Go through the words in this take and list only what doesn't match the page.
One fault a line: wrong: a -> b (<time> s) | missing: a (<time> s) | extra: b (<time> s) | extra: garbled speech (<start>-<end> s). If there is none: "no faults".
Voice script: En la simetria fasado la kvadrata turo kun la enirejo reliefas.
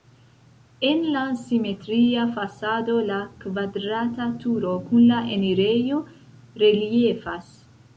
no faults